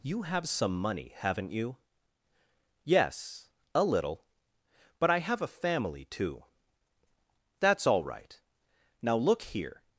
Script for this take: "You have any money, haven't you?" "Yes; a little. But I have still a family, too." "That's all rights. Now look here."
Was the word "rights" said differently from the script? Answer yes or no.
yes